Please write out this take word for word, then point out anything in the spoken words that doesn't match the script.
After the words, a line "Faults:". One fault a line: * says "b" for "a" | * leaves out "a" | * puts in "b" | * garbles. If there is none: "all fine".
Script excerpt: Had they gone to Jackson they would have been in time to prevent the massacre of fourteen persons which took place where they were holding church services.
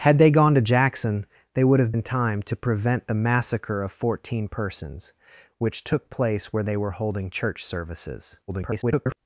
Had they gone to Jackson they would have in time to prevent the massacre of fourteen persons which took place where they were holding church services. [garbled]
Faults:
* leaves out "been"
* garbles